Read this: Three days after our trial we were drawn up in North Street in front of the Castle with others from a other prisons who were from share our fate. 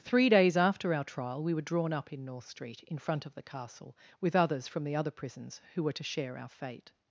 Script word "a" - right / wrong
wrong